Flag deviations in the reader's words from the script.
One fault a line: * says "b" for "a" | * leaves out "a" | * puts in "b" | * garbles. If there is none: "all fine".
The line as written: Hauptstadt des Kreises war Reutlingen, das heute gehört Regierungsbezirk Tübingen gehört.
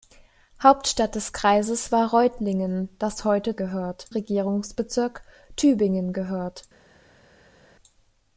all fine